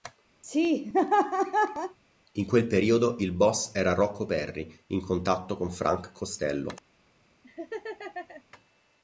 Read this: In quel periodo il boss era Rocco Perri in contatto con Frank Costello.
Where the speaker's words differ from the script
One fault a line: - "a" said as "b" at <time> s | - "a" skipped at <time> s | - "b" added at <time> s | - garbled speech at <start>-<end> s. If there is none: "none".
none